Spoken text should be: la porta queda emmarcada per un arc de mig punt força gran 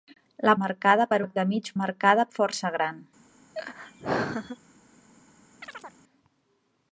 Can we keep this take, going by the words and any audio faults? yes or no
no